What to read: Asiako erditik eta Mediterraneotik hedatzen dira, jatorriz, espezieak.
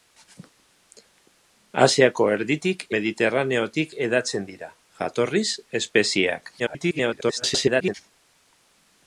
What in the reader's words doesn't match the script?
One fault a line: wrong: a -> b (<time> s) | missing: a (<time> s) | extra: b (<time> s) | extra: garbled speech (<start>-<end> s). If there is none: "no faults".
missing: eta (2.9 s)
extra: garbled speech (6.6-7.9 s)